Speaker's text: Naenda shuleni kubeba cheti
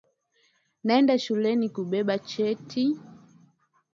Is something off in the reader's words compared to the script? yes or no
no